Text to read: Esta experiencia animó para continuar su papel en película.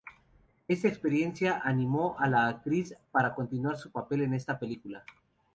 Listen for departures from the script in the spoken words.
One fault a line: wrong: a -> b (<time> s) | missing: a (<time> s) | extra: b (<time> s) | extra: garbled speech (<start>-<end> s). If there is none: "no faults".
extra: a la actriz (2.2 s)
extra: esta (4.3 s)